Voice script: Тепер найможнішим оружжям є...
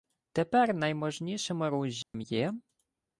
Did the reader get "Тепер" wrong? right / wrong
right